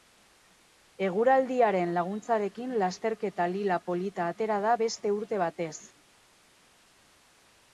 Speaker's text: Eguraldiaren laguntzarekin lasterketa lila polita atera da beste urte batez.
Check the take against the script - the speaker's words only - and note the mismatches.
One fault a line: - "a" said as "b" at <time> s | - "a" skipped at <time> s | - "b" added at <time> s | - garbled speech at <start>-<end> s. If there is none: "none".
none